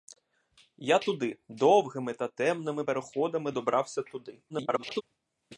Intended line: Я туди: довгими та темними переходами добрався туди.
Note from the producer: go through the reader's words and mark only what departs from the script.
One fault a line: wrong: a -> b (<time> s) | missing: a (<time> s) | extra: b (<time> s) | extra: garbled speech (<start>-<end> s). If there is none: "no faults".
extra: garbled speech (4.5-5.0 s)